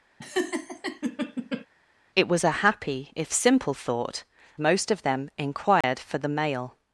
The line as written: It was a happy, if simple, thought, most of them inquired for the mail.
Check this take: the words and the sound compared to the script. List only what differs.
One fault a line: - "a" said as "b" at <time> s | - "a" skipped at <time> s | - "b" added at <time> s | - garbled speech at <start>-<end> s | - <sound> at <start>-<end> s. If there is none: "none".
- laugh at 0.2-1.7 s
- dropout at 5.8-5.8 s